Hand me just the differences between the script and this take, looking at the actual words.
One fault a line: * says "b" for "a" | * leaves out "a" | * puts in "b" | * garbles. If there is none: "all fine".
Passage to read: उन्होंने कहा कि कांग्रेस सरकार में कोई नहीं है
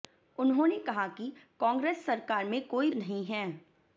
all fine